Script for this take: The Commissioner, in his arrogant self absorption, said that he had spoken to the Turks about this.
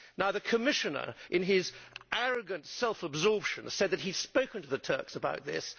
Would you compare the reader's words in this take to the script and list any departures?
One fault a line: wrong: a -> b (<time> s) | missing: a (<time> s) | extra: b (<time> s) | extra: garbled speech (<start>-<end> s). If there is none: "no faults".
no faults